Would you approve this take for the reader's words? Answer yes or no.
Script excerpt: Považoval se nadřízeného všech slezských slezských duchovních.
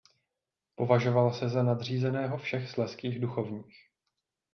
no